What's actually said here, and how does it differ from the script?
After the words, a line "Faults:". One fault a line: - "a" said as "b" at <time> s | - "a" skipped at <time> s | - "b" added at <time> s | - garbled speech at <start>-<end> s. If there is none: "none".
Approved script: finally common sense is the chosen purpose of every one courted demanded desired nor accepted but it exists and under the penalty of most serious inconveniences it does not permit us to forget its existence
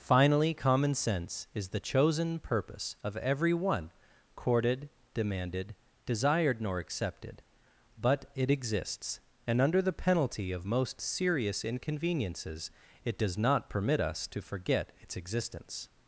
finally common sense is the chosen purpose of every one courted demanded desired nor accepted but it exists and under the penalty of most serious inconveniences it does not permit us to forget its existence
Faults:
none